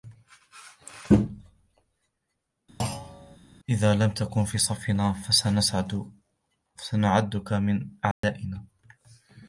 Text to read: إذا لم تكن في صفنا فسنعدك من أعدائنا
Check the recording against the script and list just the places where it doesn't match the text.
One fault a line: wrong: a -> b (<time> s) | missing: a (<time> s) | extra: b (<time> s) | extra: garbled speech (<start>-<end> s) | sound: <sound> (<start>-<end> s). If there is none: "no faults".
sound: thud (2.8-3.4 s)
sound: dropout (8.1-8.2 s)